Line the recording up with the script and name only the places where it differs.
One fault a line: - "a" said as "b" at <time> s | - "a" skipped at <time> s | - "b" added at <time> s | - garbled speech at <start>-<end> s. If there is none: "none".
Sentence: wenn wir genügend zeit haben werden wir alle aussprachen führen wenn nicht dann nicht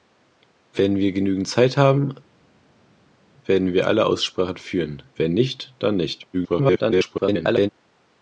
- garbled speech at 6.3-7.7 s